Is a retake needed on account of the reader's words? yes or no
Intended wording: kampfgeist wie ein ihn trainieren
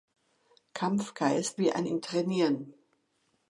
no